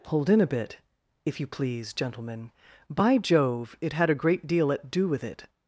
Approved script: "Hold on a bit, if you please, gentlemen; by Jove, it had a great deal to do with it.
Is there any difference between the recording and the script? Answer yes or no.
yes